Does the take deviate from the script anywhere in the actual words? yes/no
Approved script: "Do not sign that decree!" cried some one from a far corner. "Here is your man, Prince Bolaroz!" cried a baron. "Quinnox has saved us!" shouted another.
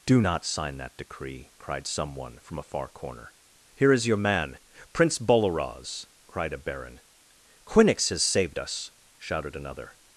no